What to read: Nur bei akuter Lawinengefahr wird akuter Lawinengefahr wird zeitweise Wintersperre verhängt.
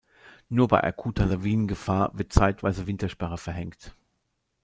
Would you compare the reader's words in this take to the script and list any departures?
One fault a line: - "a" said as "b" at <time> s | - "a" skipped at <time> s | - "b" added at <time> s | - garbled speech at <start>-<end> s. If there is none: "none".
- "akuter Lawinengefahr wird" skipped at 2.3 s